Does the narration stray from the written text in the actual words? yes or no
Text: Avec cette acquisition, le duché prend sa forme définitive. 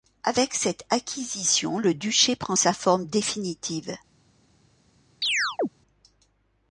no